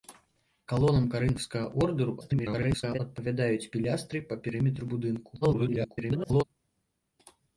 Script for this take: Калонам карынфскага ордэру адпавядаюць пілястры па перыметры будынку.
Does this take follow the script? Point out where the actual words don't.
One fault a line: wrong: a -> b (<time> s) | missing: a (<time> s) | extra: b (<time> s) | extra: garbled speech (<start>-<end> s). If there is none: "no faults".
extra: garbled speech (2.2-3.0 s)
extra: garbled speech (5.4-6.4 s)